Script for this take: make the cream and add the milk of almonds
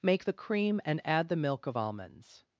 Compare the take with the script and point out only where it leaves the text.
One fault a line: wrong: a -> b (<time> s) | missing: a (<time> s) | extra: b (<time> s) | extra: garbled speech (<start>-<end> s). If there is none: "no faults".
no faults